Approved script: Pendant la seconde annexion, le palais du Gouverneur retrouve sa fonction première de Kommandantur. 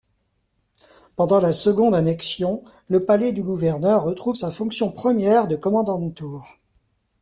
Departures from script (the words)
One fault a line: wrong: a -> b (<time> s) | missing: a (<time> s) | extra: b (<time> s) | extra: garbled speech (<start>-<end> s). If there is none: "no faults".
no faults